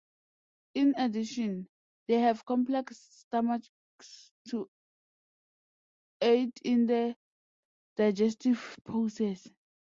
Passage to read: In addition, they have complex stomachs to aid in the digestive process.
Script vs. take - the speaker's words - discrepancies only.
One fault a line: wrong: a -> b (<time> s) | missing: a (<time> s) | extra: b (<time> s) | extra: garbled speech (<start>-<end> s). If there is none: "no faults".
no faults